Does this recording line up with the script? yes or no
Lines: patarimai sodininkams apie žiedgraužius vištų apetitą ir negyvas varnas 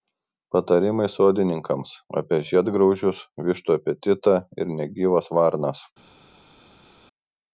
yes